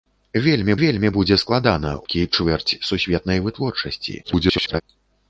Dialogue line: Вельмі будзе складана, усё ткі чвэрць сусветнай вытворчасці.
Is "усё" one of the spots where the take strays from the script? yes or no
yes